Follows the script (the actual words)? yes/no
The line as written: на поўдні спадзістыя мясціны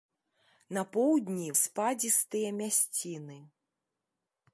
yes